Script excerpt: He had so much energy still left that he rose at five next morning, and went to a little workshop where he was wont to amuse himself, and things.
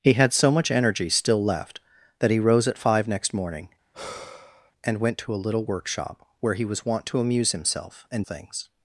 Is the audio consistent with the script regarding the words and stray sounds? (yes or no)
no